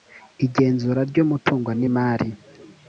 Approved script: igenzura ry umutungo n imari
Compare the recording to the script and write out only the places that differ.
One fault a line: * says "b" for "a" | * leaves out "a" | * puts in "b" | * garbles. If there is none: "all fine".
all fine